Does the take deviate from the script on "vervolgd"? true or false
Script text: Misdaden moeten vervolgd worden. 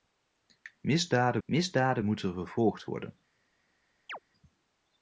false